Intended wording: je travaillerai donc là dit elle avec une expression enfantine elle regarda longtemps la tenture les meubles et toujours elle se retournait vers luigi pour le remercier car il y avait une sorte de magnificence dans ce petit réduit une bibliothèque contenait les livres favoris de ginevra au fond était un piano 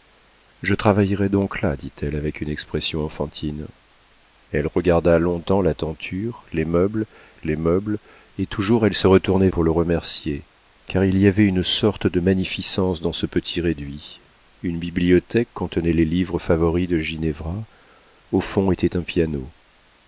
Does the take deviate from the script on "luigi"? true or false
true